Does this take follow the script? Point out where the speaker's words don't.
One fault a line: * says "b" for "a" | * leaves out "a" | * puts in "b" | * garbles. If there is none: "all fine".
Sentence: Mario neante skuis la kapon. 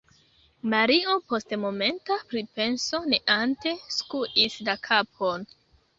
* puts in "post momenta pripenso"